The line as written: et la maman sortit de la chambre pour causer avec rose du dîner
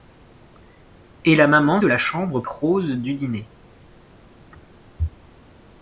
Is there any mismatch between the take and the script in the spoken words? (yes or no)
yes